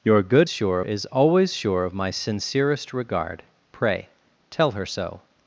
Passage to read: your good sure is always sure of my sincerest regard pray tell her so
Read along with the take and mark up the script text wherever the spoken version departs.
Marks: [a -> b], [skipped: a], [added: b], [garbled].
your good sure is always sure of my sincerest regard pray tell her so